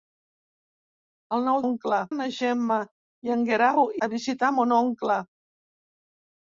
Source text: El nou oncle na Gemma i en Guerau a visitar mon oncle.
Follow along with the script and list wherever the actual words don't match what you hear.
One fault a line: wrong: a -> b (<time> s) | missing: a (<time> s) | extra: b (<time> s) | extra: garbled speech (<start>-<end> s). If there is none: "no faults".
no faults